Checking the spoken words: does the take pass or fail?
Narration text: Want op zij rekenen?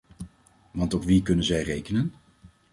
fail